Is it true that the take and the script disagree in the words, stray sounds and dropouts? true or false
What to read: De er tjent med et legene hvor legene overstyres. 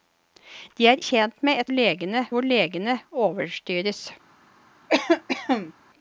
true